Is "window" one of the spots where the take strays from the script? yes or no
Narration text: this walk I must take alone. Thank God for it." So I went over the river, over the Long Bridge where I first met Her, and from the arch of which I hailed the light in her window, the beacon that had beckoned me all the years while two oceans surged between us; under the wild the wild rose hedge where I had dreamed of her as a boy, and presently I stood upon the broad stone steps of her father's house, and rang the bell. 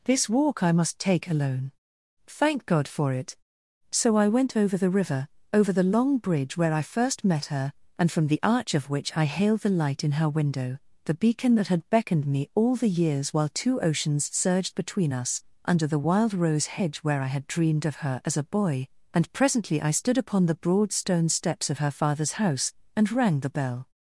no